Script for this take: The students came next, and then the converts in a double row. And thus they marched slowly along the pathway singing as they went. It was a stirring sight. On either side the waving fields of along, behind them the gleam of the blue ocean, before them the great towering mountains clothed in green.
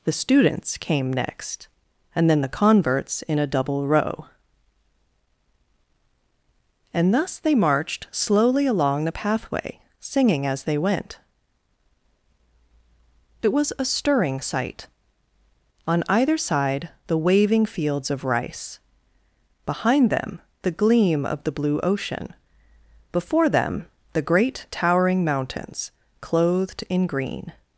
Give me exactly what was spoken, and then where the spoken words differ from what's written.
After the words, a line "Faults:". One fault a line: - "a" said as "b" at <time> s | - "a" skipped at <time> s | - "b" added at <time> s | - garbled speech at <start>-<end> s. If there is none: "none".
The students came next, and then the converts in a double row. And thus they marched slowly along the pathway singing as they went. It was a stirring sight. On either side the waving fields of rice, behind them the gleam of the blue ocean, before them the great towering mountains clothed in green.
Faults:
- "along" said as "rice" at 18.2 s